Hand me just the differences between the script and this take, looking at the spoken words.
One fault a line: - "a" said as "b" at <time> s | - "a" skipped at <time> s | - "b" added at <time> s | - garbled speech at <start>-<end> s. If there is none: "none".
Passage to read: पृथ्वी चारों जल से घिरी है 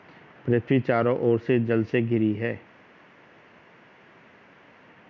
- "ओर से" added at 1.2 s